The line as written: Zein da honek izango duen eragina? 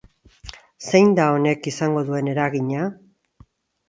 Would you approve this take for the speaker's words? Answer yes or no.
yes